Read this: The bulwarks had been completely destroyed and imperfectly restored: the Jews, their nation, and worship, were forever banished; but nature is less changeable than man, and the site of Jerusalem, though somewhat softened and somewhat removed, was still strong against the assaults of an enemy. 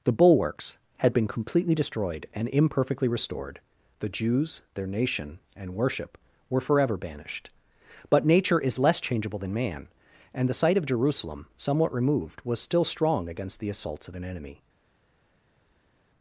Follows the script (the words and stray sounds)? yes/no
no